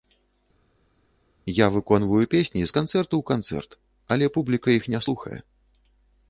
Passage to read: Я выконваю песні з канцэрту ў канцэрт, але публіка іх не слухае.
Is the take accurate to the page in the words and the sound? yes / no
yes